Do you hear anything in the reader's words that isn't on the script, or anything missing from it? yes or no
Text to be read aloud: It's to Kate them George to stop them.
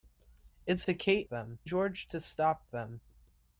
no